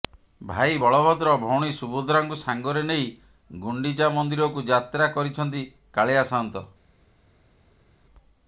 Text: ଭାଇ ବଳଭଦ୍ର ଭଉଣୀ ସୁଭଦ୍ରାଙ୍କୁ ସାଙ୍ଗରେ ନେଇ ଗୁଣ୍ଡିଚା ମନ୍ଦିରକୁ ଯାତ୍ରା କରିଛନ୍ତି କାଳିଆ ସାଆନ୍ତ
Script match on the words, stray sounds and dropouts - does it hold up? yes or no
yes